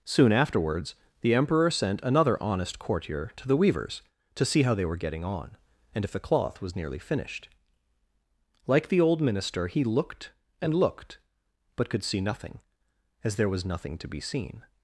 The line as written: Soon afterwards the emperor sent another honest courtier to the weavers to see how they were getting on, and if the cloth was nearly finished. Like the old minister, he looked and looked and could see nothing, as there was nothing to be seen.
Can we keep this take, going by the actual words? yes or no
no